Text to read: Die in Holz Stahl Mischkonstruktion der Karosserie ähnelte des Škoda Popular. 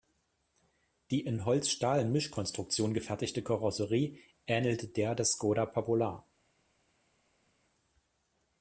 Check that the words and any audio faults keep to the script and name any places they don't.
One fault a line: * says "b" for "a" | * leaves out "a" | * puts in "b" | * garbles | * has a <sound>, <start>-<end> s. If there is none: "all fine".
* says "gefertigte" for "der"
* puts in "der"